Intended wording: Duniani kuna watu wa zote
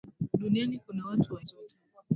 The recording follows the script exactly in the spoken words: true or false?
true